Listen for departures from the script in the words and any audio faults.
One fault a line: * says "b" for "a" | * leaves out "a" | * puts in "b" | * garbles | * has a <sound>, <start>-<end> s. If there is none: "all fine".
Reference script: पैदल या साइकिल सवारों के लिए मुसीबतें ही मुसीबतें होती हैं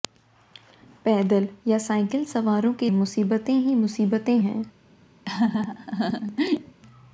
* leaves out "लिए"
* leaves out "होती"
* has a laugh, 5.2-6.8 s